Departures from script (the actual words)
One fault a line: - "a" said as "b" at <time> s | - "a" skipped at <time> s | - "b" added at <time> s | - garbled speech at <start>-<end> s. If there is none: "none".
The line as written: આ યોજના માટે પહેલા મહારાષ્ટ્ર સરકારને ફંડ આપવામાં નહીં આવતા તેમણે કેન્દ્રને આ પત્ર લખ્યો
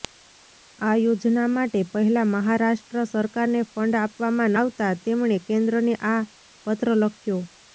- "નહીં" skipped at 4.6 s